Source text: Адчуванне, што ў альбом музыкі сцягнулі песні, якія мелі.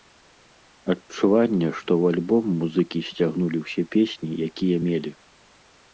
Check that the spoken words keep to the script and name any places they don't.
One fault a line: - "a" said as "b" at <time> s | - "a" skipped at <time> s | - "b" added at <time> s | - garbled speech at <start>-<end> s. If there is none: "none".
- "ўсе" added at 3.7 s